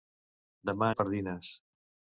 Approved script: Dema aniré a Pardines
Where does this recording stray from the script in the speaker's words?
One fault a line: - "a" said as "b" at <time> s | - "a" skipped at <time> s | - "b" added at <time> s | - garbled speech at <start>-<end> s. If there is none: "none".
- "aniré" skipped at 0.9 s